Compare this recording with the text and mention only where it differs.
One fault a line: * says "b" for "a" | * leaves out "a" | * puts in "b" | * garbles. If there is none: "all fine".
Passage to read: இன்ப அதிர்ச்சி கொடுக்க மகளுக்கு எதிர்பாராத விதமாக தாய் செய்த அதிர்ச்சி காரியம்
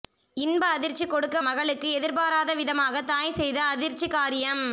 all fine